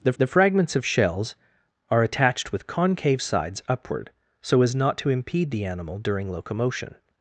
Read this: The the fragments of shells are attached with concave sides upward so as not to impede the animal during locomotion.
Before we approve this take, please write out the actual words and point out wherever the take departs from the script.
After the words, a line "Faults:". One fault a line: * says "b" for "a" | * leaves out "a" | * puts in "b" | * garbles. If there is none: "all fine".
The the fragments of shells are attached with concave sides upward so as not to impede the animal during locomotion.
Faults:
all fine